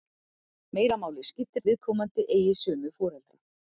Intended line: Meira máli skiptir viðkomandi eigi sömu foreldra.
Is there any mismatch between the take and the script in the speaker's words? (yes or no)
no